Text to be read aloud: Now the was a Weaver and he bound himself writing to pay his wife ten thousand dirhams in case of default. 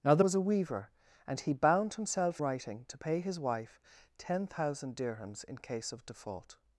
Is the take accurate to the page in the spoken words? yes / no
yes